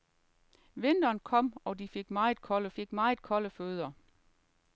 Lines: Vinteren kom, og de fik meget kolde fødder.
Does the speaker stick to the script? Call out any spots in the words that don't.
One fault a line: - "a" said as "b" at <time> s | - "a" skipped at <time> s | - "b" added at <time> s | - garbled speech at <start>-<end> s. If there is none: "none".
- "fik meget kolde" added at 2.7 s